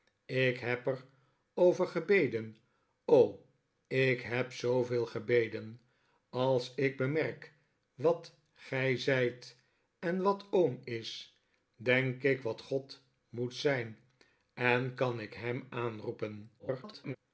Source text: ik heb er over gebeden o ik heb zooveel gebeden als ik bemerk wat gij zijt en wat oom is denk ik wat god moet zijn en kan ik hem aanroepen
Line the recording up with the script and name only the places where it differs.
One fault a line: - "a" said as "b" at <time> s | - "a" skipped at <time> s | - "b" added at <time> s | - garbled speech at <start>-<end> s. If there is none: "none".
- garbled speech at 16.6-17.2 s